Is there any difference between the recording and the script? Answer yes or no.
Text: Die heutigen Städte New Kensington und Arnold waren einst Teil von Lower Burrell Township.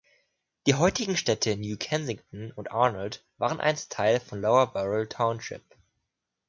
no